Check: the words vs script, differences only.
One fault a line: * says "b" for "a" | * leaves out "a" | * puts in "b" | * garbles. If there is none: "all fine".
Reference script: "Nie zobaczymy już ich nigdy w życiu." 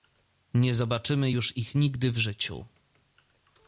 all fine